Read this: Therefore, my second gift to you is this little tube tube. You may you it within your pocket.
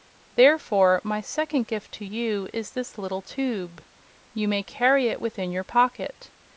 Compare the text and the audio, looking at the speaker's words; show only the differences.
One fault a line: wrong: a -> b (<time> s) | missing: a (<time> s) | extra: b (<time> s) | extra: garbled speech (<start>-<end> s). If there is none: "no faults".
missing: tube (3.8 s)
wrong: you -> carry (4.6 s)